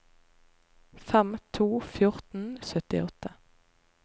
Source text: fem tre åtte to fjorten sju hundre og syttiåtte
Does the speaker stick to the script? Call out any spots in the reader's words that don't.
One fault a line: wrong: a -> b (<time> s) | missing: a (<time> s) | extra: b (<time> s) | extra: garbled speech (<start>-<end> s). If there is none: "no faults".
missing: tre åtte (1.4 s)
missing: sju hundre (2.5 s)